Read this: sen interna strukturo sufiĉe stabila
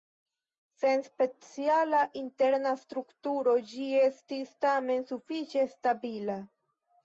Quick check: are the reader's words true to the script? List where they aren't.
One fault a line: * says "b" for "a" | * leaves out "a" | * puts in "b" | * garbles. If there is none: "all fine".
* puts in "speciala"
* puts in "ĝi estis tamen"